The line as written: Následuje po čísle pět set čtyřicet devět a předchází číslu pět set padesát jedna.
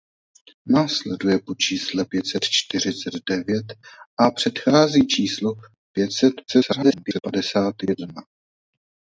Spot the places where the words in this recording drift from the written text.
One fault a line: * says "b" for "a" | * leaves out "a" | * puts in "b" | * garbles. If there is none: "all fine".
* garbles